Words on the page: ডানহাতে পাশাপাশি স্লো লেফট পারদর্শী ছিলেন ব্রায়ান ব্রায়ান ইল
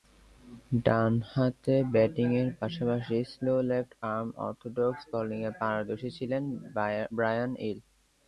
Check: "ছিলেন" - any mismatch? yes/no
no